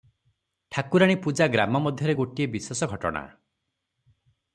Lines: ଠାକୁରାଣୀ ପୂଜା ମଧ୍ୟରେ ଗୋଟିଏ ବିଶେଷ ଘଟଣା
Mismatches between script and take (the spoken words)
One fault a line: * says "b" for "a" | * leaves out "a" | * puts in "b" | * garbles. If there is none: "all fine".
* puts in "ଗ୍ରାମ"